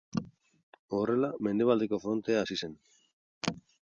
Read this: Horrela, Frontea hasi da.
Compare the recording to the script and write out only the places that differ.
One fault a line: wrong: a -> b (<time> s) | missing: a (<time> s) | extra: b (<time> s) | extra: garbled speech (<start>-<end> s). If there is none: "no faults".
extra: Mendebaldeko (1.5 s)
wrong: da -> zen (2.6 s)